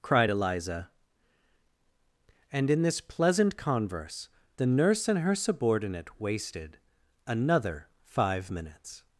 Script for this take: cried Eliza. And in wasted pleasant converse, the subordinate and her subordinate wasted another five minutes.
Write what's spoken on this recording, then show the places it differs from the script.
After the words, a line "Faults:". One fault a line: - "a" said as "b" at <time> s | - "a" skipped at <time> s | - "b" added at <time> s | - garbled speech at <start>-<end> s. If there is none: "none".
cried Eliza. And in this pleasant converse, the nurse and her subordinate wasted another five minutes.
Faults:
- "wasted" said as "this" at 2.8 s
- "subordinate" said as "nurse" at 4.7 s